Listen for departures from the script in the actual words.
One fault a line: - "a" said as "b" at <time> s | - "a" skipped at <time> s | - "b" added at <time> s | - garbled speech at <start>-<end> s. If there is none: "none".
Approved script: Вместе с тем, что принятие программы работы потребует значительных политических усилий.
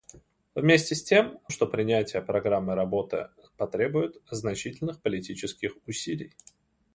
none